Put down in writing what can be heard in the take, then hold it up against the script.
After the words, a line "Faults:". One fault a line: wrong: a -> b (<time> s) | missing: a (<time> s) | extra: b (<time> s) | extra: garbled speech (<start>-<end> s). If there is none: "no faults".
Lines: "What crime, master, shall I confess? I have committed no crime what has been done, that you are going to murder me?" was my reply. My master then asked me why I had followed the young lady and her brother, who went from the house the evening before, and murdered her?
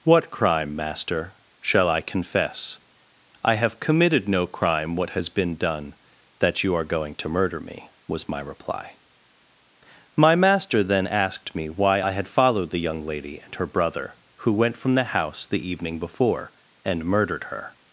"What crime, master, shall I confess? I have committed no crime what has been done, that you are going to murder me?" was my reply. My master then asked me why I had followed the young lady and her brother, who went from the house the evening before, and murdered her?
Faults:
no faults